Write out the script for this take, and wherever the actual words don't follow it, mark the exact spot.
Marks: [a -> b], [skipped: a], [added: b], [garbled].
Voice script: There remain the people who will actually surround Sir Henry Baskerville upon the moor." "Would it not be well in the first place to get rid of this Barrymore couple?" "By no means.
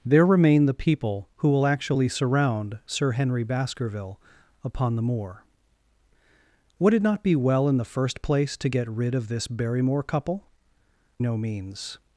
There remain the people who will actually surround Sir Henry Baskerville upon the moor." "Would it not be well in the first place to get rid of this Barrymore couple?" [skipped: "By] no means.